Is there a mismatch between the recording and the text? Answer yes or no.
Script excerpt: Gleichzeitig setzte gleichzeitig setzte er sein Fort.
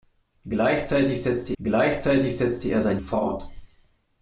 no